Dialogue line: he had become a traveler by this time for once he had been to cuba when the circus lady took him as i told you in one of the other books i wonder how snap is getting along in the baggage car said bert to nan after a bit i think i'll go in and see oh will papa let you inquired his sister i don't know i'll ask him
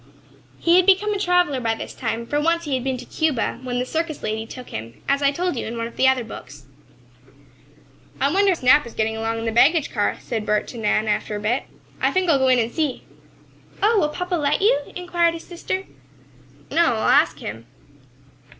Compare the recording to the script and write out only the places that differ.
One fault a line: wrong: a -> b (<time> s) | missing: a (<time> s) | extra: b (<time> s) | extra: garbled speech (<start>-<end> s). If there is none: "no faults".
missing: how (8.6 s)
missing: i don't (15.8 s)